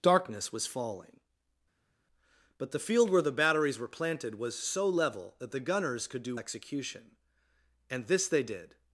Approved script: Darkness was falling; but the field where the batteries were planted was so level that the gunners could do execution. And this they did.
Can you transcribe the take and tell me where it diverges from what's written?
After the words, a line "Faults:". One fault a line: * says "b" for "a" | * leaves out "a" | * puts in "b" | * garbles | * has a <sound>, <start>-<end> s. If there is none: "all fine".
Darkness was falling; but the field where the batteries were planted was so level that the gunners could do execution. And this they did.
Faults:
all fine